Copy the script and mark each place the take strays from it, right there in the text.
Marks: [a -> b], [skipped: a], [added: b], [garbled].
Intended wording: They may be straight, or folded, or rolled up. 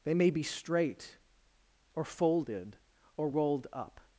They may be straight, or folded, or rolled up.